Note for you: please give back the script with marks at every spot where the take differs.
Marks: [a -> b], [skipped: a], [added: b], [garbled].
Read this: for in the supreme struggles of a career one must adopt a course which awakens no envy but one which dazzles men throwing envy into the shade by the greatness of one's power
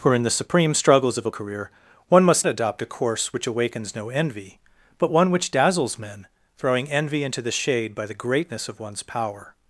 for in the supreme struggles of a career one must adopt a course which awakens no envy but one which dazzles men throwing envy into the shade by the greatness of one's power